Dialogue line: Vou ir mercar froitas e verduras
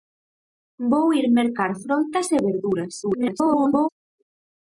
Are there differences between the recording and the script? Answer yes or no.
yes